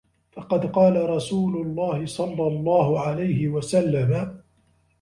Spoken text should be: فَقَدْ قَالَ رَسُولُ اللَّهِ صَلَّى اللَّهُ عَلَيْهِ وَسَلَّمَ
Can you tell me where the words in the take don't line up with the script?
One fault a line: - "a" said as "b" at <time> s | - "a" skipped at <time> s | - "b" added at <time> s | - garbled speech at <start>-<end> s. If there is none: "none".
none